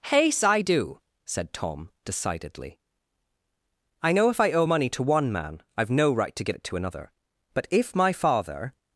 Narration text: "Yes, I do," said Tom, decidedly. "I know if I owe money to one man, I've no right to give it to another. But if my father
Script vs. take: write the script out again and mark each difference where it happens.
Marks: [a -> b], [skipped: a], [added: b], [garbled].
"Yes, I do," said Tom, decidedly. "I know if I owe money to one man, I've no right to give it to another. But if my father